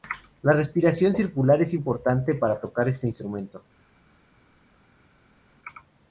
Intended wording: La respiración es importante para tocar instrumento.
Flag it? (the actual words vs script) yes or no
yes